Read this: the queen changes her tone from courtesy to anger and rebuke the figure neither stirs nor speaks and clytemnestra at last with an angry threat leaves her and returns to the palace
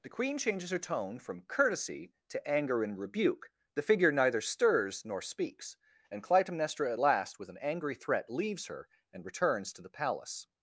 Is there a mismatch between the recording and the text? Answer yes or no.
no